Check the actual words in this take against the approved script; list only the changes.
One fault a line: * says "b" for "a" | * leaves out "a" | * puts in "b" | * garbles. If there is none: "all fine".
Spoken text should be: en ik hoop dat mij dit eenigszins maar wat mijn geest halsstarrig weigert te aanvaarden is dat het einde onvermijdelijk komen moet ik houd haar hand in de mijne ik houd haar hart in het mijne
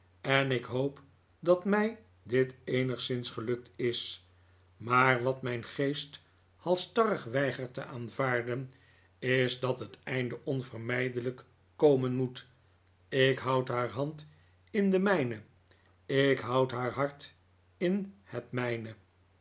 * puts in "gelukt is"